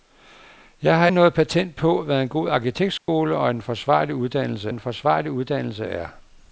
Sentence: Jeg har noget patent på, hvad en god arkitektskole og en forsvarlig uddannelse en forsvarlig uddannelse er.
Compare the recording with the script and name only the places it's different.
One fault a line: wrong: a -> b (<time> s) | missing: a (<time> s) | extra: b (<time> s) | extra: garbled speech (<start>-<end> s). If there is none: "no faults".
no faults